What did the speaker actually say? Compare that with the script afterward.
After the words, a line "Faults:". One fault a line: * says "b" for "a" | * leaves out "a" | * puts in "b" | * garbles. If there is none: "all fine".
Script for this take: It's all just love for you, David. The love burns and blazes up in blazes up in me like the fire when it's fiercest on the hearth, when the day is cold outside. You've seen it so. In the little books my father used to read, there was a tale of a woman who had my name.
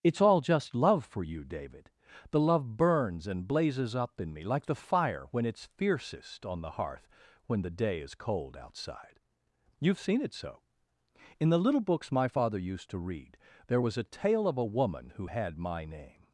It's all just love for you, David. The love burns and blazes up in me like the fire when it's fiercest on the hearth, when the day is cold outside. You've seen it so. In the little books my father used to read, there was a tale of a woman who had my name.
Faults:
* leaves out "blazes up in"